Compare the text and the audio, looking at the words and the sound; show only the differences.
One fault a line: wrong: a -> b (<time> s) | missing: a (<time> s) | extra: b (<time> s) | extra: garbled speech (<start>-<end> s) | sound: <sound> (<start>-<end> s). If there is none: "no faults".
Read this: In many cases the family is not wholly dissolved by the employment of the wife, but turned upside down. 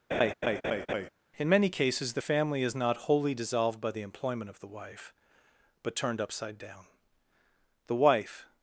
sound: laugh (0.1-1.1 s)
extra: The wife (7.9 s)